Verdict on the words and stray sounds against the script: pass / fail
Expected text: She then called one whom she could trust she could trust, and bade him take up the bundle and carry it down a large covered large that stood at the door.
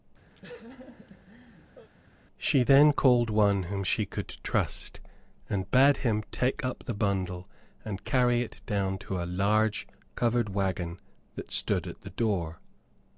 fail